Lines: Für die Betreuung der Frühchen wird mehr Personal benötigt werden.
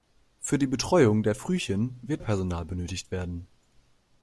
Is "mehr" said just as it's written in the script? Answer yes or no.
no